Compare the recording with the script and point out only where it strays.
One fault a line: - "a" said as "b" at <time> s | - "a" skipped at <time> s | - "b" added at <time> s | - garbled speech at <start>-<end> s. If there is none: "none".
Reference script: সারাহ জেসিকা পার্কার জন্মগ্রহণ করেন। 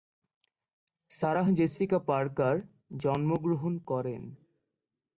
none